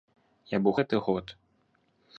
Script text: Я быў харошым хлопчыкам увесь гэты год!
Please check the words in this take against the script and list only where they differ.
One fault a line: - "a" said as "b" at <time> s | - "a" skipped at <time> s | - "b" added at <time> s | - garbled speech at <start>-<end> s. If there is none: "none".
- "харошым хлопчыкам увесь" skipped at 0.7 s